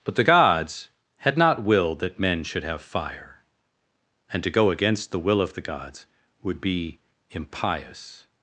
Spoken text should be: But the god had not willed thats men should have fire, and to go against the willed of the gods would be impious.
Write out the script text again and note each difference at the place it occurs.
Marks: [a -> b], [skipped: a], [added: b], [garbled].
But the [god -> gods] had not willed [thats -> that] men should have fire, and to go against the [willed -> will] of the gods would be impious.